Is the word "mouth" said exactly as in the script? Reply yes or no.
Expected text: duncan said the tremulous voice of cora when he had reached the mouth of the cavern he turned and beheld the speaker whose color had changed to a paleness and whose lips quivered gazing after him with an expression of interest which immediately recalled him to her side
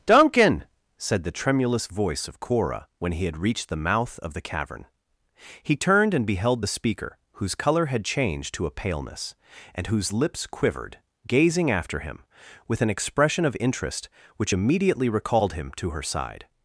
yes